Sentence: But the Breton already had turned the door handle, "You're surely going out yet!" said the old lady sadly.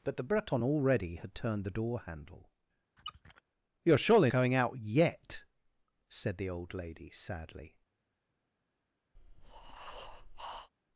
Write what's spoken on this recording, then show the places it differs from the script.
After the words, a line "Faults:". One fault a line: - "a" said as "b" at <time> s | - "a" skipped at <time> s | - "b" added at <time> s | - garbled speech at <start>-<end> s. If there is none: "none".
But the Breton already had turned the door handle, "You're surely going out yet!" said the old lady sadly.
Faults:
none